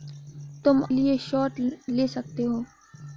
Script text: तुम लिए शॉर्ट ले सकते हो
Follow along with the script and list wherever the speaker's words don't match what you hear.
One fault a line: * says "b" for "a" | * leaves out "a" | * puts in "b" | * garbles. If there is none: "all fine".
all fine